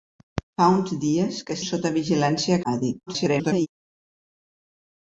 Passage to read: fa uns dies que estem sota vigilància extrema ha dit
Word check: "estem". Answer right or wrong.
wrong